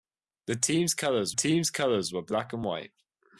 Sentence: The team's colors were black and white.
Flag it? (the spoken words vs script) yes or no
yes